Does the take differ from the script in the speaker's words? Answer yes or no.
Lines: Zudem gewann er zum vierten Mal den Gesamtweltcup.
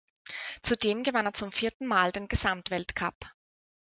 no